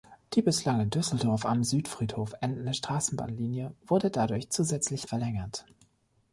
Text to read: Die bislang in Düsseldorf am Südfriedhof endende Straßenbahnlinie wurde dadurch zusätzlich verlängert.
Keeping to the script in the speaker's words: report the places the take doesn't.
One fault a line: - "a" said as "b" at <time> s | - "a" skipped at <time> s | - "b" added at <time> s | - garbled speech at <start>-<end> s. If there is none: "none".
none